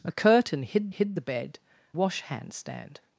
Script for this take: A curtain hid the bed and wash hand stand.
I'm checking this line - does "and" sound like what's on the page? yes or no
no